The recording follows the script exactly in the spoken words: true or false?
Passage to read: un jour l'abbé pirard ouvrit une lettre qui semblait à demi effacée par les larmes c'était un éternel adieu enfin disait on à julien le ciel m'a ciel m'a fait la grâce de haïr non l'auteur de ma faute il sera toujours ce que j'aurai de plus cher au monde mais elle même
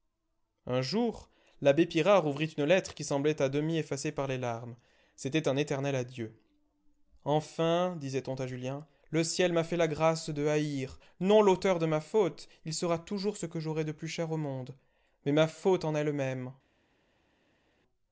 false